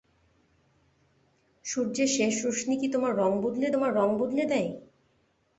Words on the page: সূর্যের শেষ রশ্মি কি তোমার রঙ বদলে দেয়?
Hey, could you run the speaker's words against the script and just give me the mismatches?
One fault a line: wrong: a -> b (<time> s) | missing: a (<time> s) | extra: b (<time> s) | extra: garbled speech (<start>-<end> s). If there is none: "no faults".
extra: তোমার রঙ বদলে (3.7 s)